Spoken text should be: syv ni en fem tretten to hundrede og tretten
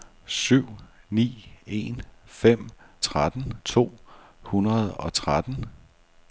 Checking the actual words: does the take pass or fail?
pass